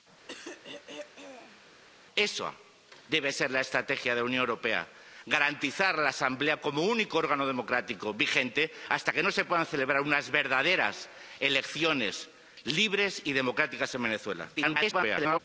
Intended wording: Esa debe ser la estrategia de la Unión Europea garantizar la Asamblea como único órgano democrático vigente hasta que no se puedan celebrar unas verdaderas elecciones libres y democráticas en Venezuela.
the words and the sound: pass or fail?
fail